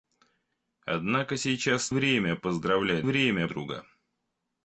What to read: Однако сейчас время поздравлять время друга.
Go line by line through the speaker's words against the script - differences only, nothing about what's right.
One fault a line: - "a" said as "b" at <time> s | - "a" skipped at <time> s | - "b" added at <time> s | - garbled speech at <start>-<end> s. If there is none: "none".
none